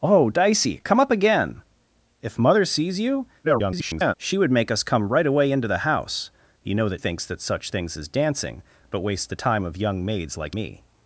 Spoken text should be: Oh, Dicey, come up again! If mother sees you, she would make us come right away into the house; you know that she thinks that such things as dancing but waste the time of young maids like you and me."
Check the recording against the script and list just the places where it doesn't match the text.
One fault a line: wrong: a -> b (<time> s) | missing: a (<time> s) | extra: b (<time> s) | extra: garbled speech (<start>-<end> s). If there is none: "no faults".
extra: garbled speech (3.4-4.1 s)
missing: she (7.0 s)
missing: you and (10.5 s)